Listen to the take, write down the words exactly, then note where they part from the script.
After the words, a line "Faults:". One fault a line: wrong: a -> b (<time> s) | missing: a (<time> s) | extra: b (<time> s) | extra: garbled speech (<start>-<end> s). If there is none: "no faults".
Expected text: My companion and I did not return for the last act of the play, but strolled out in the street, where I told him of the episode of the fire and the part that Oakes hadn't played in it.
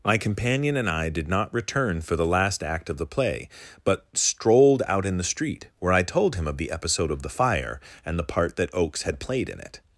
My companion and I did not return for the last act of the play, but strolled out in the street, where I told him of the episode of the fire and the part that Oakes had played in it.
Faults:
wrong: hadn't -> had (9.0 s)